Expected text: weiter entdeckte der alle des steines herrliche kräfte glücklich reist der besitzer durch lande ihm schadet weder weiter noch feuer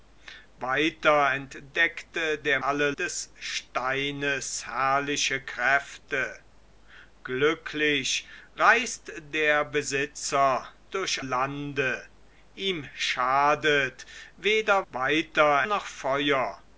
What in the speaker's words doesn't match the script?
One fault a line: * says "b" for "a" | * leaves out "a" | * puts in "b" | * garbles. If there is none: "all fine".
all fine